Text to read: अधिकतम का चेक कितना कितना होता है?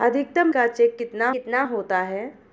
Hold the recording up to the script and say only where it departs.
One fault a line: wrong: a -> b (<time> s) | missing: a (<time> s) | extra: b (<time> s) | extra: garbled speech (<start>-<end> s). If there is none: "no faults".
no faults